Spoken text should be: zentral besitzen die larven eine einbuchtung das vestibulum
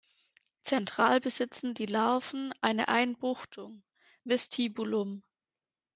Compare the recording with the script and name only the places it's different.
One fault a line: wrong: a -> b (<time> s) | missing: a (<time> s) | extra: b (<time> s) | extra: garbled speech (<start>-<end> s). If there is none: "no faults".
missing: das (3.8 s)